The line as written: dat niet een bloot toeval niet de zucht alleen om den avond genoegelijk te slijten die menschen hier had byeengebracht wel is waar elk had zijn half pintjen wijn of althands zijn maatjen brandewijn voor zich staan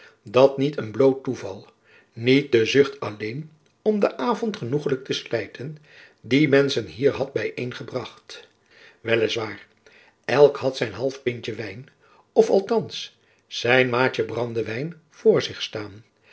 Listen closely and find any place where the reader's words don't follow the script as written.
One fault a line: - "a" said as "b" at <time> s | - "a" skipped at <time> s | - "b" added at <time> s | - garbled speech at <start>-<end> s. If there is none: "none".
none